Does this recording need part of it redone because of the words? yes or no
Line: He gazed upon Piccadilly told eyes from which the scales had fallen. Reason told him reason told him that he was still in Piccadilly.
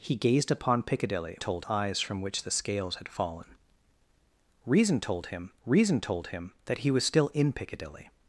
no